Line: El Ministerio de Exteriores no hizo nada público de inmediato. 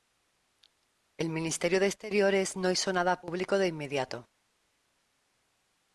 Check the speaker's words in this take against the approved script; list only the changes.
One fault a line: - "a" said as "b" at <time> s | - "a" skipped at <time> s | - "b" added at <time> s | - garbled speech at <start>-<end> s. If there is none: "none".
none